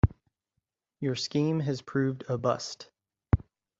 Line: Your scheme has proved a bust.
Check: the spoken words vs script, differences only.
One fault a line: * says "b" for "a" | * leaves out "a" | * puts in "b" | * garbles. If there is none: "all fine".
all fine